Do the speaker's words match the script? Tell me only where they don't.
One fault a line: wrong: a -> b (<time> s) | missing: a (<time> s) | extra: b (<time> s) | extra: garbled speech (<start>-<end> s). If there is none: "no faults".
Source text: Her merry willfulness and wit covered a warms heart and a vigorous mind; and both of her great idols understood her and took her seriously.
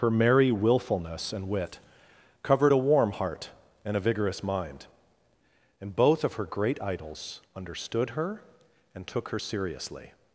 wrong: warms -> warm (2.8 s)